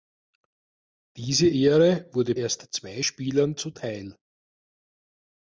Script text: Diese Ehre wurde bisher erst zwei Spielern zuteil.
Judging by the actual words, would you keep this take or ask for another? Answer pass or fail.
fail